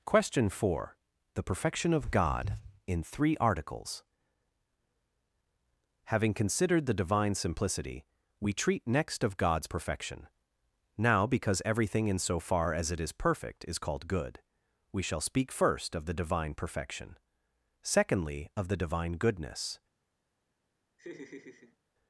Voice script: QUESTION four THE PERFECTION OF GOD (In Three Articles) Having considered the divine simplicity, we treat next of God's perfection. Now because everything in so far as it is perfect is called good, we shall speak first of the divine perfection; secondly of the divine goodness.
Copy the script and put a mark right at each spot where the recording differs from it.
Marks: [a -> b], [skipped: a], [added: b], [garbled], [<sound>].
QUESTION four THE PERFECTION OF GOD (In Three Articles) Having considered the divine simplicity, we treat next of God's perfection. Now because everything in so far as it is perfect is called good, we shall speak first of the divine perfection; secondly of the divine goodness. [laugh]